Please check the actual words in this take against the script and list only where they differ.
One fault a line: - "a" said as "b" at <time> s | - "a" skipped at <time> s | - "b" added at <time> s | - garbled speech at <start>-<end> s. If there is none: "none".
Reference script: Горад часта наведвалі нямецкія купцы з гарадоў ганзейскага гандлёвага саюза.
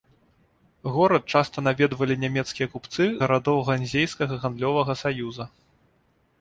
- "з" skipped at 3.0 s